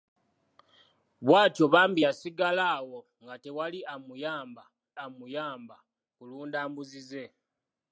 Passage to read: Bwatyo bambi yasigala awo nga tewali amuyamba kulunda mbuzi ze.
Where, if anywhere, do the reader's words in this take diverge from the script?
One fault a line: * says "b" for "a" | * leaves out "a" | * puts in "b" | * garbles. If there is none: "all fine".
* puts in "amuyamba"